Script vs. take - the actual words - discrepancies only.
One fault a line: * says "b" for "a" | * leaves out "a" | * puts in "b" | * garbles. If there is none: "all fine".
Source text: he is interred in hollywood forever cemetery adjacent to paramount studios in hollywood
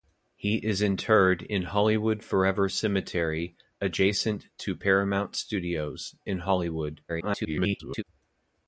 * garbles